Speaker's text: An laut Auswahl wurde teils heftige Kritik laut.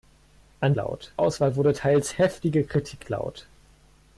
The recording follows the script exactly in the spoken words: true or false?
true